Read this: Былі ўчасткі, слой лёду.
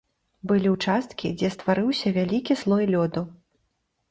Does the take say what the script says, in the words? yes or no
no